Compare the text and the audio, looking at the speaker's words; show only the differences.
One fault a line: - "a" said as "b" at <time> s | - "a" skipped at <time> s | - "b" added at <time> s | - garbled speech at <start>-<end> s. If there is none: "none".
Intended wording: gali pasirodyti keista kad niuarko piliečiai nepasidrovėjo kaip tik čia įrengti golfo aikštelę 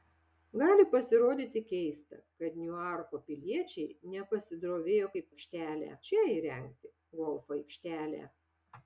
- "tik" said as "aikštelę" at 5.3 s